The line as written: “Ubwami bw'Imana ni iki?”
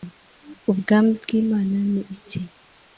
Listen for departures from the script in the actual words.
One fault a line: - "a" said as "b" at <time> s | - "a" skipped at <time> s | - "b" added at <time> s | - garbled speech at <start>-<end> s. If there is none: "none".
none